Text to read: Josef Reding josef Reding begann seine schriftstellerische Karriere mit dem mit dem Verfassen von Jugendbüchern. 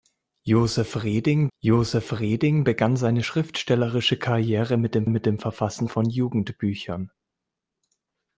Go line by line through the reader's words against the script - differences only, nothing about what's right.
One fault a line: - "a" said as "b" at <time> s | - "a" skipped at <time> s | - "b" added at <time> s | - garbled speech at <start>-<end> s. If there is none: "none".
none